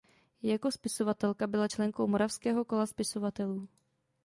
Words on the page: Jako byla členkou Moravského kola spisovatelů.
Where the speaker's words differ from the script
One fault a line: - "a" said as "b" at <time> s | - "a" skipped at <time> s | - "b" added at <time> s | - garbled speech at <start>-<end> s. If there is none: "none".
- "spisovatelka" added at 0.7 s